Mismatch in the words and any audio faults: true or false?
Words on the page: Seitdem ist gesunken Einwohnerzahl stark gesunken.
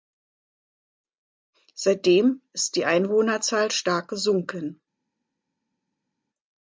true